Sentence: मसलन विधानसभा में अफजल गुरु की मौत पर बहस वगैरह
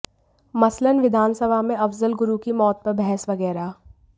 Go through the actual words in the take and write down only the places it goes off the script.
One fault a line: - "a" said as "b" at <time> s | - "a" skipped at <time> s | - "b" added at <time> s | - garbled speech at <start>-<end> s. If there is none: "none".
none